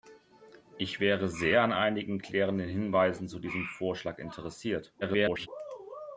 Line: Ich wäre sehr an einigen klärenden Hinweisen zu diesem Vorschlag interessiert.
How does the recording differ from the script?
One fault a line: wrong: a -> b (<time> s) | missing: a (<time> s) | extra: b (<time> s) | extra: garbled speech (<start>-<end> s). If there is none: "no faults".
extra: garbled speech (5.0-5.5 s)